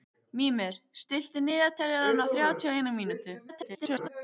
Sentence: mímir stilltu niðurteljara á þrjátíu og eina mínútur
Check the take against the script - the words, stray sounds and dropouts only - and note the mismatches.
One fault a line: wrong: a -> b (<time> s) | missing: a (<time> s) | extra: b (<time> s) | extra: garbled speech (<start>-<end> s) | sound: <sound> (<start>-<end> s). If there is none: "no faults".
extra: garbled speech (3.5-4.1 s)